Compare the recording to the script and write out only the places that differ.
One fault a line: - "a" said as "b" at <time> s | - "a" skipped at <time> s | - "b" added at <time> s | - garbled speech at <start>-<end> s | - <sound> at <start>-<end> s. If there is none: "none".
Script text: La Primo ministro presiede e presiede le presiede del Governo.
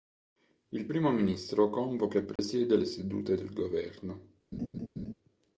- "La" said as "Il" at 0.7 s
- "presiede" said as "convoca" at 1.7 s
- dropout at 2.4-2.4 s
- "presiede" said as "sedute" at 2.8 s
- laugh at 4.5-5.1 s